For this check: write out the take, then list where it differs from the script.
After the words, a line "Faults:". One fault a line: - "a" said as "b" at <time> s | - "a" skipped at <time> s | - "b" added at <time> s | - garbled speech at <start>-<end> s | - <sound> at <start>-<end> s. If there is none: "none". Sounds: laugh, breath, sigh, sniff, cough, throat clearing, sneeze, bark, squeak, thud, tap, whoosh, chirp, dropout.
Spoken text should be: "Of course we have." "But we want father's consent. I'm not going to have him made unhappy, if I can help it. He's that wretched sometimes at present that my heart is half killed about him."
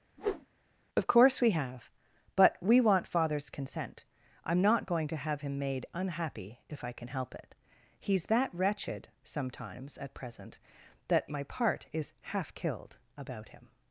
"Of course we have." "But we want father's consent. I'm not going to have him made unhappy, if I can help it. He's that wretched sometimes at present that my part is half killed about him."
Faults:
- whoosh at 0.2-0.5 s
- "heart" said as "part" at 11.4 s